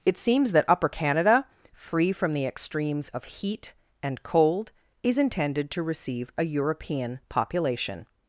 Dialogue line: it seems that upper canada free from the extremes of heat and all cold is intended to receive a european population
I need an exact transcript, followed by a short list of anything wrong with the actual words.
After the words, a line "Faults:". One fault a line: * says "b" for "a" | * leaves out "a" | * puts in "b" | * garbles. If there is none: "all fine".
it seems that upper canada free from the extremes of heat and cold is intended to receive a european population
Faults:
* leaves out "all"